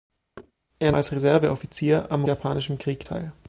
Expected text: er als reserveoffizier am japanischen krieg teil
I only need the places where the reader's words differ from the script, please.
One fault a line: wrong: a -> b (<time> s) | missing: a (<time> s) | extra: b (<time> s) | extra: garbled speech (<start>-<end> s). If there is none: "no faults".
no faults